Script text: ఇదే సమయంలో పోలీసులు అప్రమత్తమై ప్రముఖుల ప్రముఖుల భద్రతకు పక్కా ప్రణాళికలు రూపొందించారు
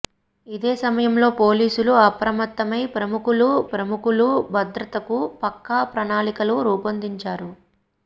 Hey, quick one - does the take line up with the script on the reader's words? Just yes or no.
yes